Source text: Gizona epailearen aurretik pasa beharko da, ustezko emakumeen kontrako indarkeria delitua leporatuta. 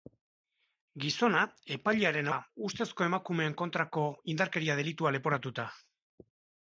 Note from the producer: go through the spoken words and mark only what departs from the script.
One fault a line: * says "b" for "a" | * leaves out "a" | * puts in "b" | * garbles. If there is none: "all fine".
* leaves out "aurretik pasa beharko"